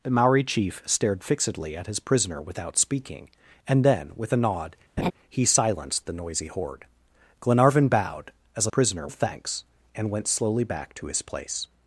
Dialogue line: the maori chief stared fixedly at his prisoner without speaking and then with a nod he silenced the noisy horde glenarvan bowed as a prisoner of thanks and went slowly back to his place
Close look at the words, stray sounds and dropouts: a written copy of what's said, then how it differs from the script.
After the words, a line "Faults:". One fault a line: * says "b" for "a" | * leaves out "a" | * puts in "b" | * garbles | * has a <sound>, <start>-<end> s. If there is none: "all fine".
the maori chief stared fixedly at his prisoner without speaking and then with a nod he silenced the noisy horde glenarvan bowed as a prisoner of thanks and went slowly back to his place
Faults:
* has a laugh, 5.0-5.1 s